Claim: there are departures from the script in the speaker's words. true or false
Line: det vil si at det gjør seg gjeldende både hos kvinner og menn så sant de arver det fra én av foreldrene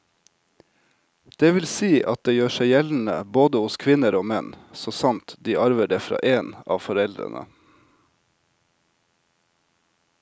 false